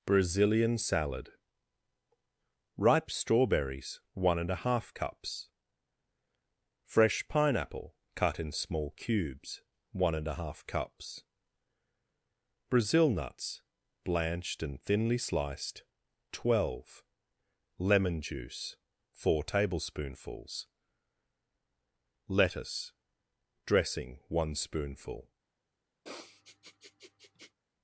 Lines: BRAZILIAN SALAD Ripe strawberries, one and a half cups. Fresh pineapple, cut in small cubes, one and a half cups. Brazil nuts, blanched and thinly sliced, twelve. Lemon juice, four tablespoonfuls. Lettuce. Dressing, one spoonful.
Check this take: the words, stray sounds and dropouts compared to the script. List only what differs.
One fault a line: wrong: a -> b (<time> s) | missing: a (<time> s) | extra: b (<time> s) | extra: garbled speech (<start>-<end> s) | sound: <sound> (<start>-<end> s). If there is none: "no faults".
sound: sniff (26.0-27.6 s)